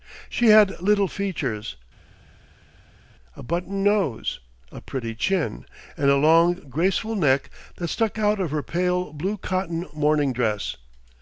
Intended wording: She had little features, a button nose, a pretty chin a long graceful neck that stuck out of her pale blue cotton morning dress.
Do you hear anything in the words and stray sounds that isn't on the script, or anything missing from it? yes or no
yes